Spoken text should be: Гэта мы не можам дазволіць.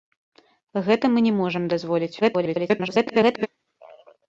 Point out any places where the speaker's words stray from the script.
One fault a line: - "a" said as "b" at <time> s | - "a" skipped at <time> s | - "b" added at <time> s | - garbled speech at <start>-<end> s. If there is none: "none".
- garbled speech at 2.2-3.5 s